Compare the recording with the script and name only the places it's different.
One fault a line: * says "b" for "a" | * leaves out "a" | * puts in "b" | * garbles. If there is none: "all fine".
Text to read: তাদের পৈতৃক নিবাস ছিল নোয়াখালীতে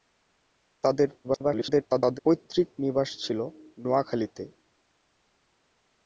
* garbles